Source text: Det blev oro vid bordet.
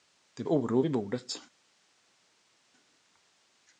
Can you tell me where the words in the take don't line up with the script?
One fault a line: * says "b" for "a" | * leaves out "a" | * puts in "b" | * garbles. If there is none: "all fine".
* leaves out "blev"